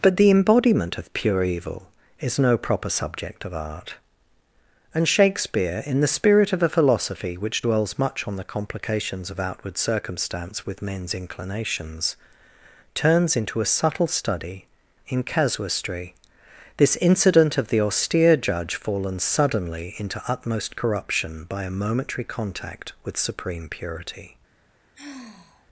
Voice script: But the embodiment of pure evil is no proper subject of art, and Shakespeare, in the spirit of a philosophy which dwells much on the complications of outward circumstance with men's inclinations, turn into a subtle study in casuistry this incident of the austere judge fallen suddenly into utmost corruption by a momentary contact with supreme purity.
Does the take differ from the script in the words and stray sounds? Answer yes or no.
yes